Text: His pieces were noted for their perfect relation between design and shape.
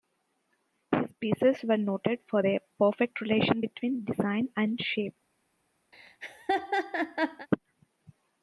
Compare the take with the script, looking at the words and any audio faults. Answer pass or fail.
fail